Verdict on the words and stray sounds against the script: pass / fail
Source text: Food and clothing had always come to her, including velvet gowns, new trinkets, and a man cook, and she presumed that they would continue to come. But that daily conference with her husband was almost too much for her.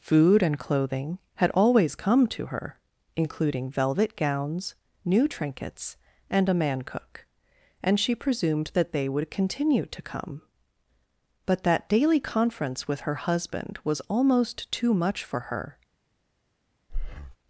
fail